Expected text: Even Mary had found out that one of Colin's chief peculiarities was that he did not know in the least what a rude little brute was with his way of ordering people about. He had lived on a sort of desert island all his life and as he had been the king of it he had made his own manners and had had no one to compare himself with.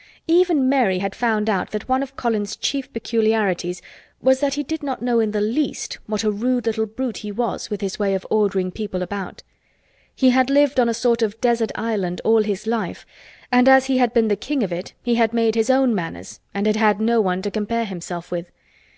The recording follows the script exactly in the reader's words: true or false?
false